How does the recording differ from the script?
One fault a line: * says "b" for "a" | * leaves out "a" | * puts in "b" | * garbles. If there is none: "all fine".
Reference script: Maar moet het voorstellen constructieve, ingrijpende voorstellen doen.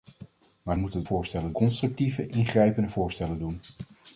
all fine